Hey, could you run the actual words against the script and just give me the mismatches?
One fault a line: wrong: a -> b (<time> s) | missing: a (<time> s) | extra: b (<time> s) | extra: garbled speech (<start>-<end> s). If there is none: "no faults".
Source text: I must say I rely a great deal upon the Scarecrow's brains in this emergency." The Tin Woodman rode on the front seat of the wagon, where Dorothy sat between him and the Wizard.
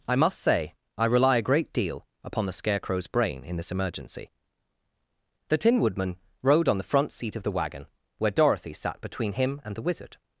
wrong: brains -> brain (3.1 s)